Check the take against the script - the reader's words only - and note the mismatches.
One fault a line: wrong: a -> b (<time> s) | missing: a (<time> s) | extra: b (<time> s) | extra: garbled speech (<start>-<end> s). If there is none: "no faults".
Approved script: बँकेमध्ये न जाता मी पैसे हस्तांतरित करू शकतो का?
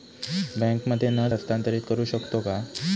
missing: जाता मी पैसे (1.3 s)